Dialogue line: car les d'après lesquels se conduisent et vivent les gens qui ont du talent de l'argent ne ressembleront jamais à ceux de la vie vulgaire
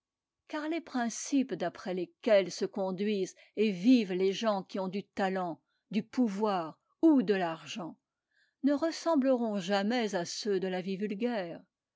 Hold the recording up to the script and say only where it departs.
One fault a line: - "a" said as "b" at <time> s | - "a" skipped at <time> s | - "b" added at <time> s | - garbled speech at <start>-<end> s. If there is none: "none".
- "principes" added at 0.8 s
- "du pouvoir ou" added at 5.9 s